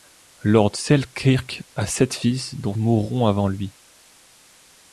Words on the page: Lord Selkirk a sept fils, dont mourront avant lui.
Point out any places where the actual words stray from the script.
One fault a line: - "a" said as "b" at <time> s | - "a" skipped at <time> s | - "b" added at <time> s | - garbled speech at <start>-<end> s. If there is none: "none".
none